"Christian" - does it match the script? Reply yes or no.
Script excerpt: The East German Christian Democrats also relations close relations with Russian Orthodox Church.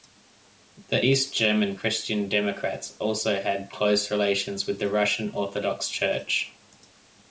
yes